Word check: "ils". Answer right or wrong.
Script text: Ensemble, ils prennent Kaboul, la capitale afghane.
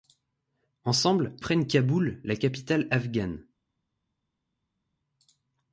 wrong